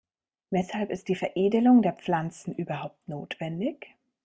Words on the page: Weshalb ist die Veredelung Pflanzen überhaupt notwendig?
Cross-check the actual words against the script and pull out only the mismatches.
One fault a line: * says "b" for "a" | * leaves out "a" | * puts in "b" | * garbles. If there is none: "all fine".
* puts in "der"